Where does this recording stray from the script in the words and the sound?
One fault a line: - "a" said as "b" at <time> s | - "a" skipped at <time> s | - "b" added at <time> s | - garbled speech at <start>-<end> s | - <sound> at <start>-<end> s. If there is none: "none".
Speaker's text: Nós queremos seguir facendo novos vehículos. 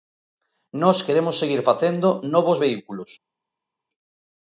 none